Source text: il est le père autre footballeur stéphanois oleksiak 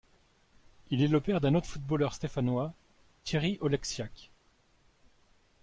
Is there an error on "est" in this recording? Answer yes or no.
no